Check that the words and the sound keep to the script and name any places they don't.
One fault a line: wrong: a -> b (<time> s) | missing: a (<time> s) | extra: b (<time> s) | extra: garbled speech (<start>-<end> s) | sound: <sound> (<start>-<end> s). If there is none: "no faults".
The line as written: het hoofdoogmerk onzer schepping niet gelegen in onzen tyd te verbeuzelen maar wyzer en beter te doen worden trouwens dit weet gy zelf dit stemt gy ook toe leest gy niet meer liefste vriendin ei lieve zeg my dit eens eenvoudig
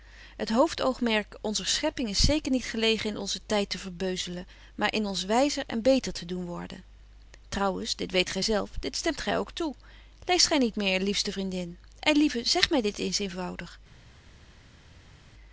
extra: is zeker (2.1 s)
extra: in ons (4.9 s)